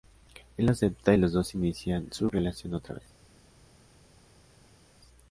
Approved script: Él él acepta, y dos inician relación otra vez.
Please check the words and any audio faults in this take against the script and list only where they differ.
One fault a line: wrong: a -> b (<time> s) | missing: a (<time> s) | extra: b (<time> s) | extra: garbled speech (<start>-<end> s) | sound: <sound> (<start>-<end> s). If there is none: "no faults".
missing: él (0.7 s)
extra: los (1.2 s)
extra: su (2.1 s)